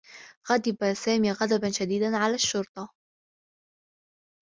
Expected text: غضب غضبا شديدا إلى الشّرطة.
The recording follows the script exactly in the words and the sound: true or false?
false